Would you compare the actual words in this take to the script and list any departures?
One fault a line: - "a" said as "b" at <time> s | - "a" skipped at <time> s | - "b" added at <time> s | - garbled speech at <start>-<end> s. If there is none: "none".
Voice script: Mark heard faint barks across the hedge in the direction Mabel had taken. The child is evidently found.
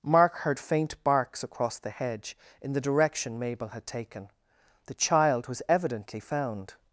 - "is" said as "was" at 5.5 s